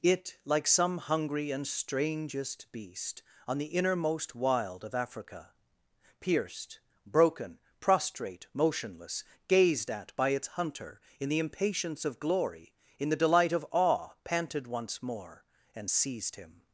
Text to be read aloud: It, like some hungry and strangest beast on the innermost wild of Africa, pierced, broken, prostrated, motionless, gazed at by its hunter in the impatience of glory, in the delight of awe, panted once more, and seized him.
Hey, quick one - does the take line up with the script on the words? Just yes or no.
no